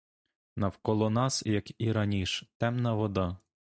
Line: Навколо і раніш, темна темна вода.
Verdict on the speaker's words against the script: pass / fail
fail